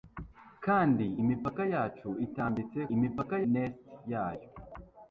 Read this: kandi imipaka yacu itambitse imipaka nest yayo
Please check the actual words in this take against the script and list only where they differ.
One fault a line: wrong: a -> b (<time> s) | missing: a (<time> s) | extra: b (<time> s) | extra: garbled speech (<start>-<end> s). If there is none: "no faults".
no faults